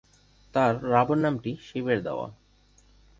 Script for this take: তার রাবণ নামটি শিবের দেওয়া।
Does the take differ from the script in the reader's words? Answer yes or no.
no